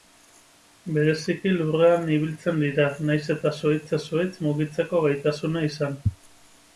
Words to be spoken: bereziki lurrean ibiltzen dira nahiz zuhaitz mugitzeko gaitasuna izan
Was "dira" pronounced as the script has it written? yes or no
yes